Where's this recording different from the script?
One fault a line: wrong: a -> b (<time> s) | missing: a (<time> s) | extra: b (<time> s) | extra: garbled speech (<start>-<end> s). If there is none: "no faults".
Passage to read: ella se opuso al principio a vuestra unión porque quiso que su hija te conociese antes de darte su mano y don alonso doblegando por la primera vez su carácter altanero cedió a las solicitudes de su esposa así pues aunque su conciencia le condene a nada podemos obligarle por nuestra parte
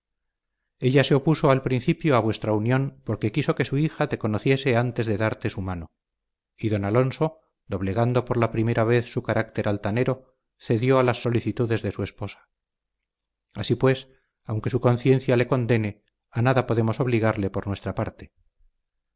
no faults